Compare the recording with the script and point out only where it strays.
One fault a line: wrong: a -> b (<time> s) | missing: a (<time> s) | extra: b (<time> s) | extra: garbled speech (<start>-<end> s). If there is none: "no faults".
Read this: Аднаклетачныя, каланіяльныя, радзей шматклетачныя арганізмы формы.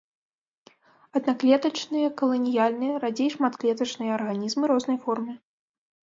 extra: рознай (4.7 s)